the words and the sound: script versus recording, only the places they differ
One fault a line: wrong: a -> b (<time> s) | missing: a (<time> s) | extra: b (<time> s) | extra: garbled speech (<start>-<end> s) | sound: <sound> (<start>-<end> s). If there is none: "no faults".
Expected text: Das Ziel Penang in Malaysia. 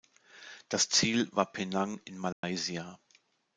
extra: war (1.3 s)
sound: dropout (2.3-2.4 s)